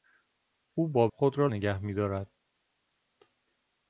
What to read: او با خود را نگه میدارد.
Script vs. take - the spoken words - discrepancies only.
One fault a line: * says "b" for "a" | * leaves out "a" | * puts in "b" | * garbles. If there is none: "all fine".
all fine